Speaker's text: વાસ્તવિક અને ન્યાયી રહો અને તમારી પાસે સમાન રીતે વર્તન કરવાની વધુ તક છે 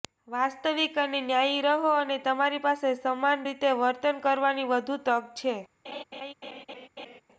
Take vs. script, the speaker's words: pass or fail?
pass